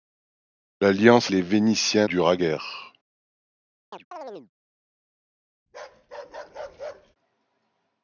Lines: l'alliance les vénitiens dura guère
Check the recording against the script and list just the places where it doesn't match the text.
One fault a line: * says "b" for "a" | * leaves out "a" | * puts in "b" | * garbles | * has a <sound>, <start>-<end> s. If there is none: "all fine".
* has a chirp, 3.9-4.5 s
* has a bark, 5.7-7.2 s